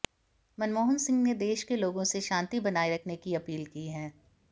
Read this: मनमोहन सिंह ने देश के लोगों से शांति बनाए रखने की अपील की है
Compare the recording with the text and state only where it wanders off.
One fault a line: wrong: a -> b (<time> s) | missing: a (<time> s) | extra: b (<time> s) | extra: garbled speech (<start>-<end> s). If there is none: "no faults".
no faults